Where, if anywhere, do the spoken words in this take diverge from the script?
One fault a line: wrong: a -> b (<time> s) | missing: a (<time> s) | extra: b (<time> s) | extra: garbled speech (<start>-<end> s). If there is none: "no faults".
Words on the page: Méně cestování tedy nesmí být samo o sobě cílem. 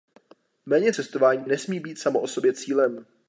missing: tedy (1.4 s)